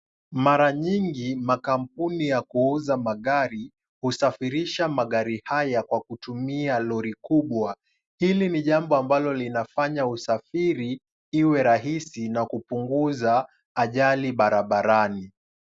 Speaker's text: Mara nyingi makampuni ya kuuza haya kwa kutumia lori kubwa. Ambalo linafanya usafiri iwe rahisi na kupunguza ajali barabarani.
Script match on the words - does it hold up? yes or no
no